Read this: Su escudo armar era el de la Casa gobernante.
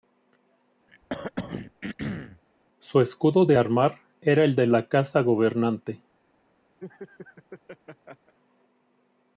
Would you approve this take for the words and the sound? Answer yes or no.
no